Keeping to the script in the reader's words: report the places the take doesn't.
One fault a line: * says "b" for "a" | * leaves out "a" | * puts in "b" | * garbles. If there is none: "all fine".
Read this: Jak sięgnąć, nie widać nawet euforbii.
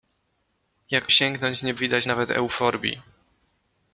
all fine